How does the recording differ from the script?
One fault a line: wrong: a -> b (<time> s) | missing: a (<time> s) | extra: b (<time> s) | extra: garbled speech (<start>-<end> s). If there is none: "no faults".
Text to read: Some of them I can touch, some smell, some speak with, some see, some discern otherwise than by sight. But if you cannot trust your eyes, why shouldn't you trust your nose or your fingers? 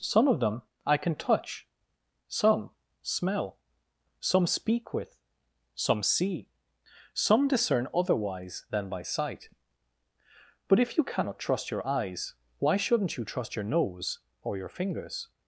no faults